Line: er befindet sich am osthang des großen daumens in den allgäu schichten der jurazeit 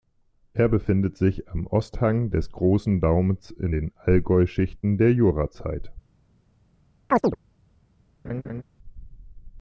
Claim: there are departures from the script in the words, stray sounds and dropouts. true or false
true